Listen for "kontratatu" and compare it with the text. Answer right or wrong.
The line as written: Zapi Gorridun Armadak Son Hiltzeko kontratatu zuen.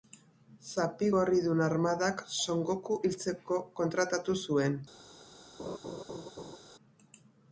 right